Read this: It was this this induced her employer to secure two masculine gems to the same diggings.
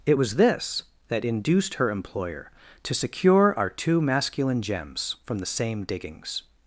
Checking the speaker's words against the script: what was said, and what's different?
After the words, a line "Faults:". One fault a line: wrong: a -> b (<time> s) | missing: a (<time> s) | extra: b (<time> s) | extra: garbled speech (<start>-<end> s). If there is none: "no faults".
It was this that induced her employer to secure our two masculine gems from the same diggings.
Faults:
wrong: this -> that (1.1 s)
extra: our (3.6 s)
wrong: to -> from (5.3 s)